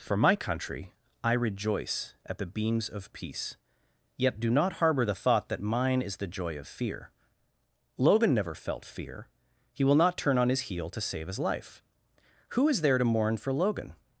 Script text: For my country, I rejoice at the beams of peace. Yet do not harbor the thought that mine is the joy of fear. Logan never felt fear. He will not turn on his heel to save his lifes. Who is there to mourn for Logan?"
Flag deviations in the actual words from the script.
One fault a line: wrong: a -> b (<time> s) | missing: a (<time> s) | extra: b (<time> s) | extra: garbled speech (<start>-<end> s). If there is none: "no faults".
wrong: lifes -> life (11.4 s)